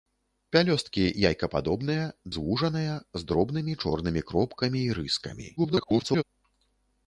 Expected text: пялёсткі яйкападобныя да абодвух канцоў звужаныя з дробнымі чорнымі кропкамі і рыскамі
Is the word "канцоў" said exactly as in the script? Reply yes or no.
no